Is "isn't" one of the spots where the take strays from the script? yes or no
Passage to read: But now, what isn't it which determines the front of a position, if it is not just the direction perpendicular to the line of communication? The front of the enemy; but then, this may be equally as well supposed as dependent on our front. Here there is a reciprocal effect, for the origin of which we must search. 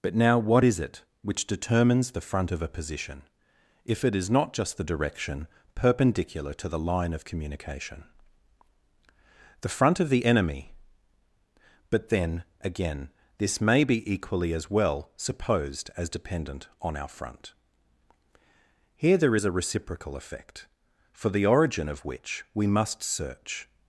yes